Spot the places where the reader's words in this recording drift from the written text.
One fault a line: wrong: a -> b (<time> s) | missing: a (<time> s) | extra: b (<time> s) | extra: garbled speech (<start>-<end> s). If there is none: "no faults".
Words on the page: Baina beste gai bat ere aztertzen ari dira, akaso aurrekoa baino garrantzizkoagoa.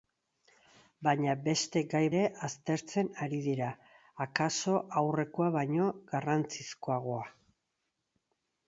missing: bat (2.0 s)